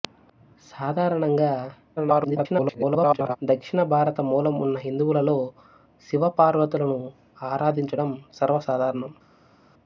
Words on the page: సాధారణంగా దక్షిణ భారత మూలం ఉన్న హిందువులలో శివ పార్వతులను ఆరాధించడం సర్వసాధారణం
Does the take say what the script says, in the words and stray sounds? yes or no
no